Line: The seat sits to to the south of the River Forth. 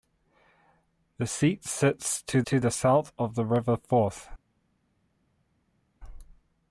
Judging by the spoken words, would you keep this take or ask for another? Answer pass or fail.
pass